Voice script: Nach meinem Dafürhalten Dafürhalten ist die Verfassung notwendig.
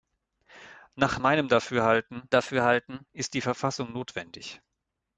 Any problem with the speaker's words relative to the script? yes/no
no